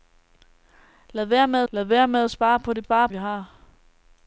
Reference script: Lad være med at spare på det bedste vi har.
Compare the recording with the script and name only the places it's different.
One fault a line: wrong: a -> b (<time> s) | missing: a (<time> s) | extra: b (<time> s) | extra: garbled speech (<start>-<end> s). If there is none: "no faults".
extra: lad være med (1.7 s)
wrong: bedste -> spare (2.8 s)